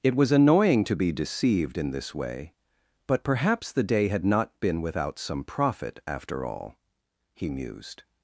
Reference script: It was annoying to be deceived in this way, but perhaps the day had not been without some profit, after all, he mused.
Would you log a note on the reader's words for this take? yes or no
no